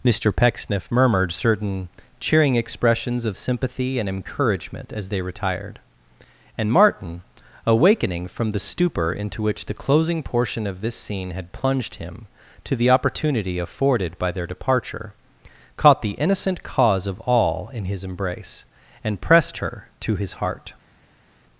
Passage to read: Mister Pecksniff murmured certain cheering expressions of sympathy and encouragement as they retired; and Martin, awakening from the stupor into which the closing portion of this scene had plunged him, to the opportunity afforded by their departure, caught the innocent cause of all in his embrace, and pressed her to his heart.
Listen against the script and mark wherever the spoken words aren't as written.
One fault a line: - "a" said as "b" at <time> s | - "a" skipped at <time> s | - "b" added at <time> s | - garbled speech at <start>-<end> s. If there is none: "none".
none